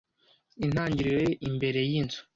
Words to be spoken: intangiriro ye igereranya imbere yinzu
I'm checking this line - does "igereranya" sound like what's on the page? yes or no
no